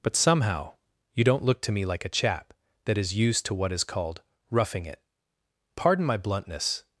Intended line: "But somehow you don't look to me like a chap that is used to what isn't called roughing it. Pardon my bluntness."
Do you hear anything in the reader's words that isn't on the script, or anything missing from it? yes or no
yes